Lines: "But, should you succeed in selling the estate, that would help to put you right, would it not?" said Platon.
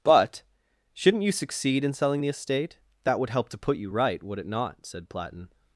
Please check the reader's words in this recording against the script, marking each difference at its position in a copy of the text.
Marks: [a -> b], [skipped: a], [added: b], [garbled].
"But, [should -> shouldn't] you succeed in selling the estate, that would help to put you right, would it not?" said Platon.